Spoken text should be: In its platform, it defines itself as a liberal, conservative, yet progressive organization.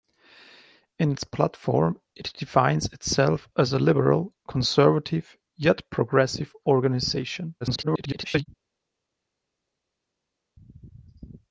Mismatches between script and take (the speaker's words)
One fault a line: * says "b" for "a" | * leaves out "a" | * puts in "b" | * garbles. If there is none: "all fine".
* garbles